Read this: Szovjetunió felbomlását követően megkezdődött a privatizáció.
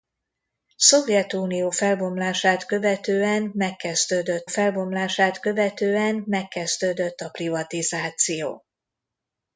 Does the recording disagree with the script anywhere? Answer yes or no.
yes